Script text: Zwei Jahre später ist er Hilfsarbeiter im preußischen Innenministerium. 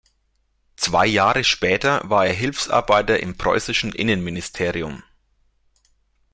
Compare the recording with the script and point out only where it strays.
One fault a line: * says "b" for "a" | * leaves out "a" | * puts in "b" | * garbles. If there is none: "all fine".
* says "war" for "ist"